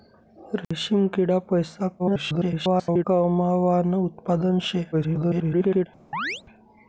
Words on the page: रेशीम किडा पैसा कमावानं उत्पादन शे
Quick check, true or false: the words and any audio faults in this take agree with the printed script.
false